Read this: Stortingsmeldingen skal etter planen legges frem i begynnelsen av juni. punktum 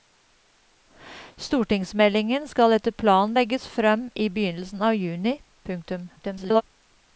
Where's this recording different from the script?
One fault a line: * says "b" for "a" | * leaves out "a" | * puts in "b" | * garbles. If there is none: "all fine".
* garbles